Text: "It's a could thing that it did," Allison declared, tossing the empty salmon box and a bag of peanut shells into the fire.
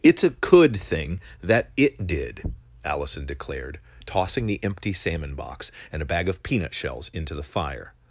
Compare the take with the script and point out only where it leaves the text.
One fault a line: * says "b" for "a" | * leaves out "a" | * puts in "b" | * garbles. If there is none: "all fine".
all fine